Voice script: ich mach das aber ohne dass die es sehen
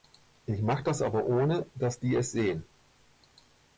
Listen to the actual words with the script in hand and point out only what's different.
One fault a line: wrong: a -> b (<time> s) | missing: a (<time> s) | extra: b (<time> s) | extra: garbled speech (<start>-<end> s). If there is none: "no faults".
no faults